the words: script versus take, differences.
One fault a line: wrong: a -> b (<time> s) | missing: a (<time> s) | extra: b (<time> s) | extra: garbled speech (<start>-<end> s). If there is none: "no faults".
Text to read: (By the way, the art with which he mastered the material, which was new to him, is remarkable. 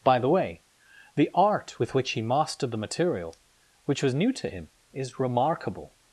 no faults